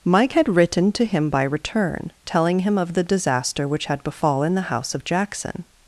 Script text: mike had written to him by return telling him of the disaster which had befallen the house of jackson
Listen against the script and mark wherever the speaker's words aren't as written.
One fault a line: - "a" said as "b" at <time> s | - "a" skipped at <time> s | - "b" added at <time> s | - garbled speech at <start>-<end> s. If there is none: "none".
none